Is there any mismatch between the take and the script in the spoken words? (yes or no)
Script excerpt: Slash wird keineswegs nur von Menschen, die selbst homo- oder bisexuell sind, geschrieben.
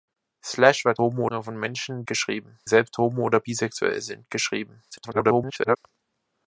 yes